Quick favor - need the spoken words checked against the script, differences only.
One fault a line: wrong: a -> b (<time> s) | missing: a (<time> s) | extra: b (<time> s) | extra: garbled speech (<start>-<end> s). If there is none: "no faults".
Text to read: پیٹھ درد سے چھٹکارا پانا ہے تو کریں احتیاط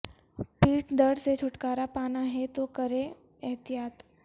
no faults